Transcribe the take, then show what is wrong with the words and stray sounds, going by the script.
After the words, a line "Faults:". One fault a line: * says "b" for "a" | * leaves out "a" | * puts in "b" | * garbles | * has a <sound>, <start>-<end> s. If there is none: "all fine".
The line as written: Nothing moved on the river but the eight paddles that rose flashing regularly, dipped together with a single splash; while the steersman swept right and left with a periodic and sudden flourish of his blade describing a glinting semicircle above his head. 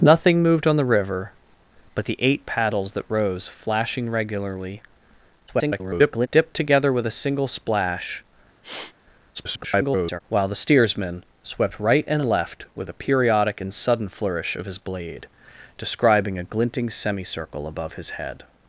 Nothing moved on the river but the eight paddles that rose flashing regularly, [garbled] dipped together with a single splash; [garbled] while the steersman swept right and left with a periodic and sudden flourish of his blade describing a glinting semicircle above his head.
Faults:
* garbles
* has a sniff, 8.6-8.9 s
* garbles